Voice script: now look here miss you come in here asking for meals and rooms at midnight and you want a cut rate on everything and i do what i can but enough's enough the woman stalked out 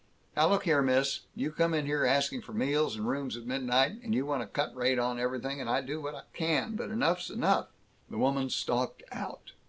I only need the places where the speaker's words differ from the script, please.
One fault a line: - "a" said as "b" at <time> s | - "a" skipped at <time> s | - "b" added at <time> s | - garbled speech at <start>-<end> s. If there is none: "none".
none